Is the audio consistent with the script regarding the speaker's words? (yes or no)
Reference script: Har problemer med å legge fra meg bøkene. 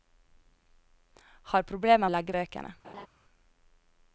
no